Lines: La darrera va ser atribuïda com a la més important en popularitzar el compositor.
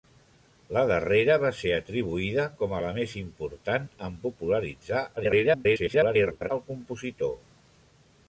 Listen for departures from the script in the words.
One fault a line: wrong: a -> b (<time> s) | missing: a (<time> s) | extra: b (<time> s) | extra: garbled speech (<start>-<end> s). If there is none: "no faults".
extra: garbled speech (5.2-6.5 s)